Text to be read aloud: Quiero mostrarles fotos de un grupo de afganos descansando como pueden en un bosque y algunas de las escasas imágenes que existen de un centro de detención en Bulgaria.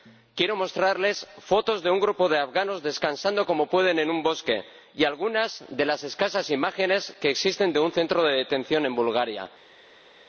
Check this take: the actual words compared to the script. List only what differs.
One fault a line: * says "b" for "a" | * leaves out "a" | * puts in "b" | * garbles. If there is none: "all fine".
all fine